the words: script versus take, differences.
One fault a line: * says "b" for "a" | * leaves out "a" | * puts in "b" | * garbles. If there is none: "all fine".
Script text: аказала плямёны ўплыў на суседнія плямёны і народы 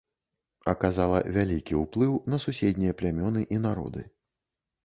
* says "вялікі" for "плямёны"